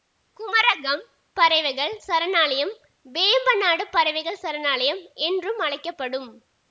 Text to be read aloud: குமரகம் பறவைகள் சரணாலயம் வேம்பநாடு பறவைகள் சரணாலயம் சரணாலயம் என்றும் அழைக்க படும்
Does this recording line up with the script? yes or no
no